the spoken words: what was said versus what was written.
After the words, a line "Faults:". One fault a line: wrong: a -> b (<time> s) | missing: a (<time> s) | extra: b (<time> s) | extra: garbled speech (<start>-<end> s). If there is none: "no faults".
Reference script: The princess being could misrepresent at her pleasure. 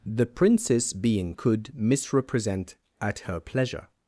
The princess being could misrepresent at her pleasure.
Faults:
no faults